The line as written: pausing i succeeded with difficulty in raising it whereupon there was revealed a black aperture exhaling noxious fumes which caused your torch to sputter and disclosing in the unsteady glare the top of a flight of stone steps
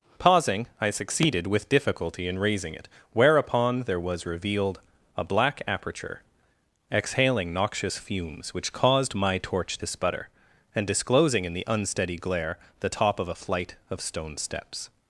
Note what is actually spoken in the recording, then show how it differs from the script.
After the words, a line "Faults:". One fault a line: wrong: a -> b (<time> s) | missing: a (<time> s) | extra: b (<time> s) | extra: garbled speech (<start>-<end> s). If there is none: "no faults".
pausing i succeeded with difficulty in raising it whereupon there was revealed a black aperture exhaling noxious fumes which caused my torch to sputter and disclosing in the unsteady glare the top of a flight of stone steps
Faults:
wrong: your -> my (9.2 s)